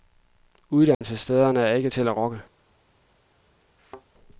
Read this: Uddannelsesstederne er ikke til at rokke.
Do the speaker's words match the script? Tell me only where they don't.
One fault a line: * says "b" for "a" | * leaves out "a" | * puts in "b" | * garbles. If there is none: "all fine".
all fine